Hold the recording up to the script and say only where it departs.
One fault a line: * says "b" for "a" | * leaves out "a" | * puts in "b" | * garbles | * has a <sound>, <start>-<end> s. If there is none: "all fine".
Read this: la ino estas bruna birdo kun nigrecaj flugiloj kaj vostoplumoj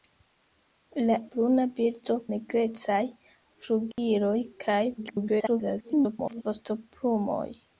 * leaves out "ino estas"
* leaves out "kun"
* has a dropout, 3.9-4.0 s
* garbles